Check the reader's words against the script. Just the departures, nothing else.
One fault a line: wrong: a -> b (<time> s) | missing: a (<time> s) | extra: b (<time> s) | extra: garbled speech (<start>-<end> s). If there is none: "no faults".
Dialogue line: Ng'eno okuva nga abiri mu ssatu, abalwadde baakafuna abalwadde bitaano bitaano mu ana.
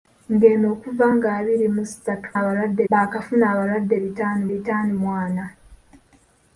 no faults